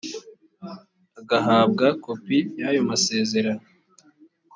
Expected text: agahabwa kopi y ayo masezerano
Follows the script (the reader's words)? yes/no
yes